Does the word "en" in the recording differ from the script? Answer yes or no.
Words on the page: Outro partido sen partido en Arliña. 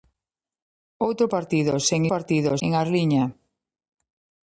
no